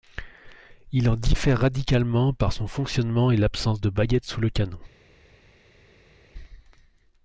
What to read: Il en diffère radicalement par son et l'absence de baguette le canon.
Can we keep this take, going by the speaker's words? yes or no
no